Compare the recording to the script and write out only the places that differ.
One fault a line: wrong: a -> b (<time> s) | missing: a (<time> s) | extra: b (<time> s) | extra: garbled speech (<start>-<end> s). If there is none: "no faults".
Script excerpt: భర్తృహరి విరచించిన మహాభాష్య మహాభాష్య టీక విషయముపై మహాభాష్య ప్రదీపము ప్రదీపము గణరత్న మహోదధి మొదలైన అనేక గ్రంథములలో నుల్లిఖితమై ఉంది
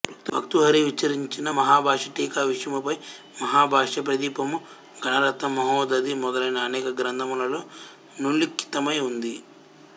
missing: మహాభాష్య (2.1 s)
missing: ప్రదీపము (4.6 s)